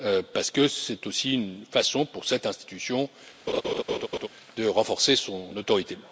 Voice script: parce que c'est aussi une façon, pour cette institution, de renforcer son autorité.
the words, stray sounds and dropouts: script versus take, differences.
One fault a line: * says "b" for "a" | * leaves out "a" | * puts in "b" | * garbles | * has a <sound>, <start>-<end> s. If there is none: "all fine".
* has a laugh, 3.5-4.3 s